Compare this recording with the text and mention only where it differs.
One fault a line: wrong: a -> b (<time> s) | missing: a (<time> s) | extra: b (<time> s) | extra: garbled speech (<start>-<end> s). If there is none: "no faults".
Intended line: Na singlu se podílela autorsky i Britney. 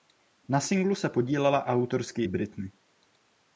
no faults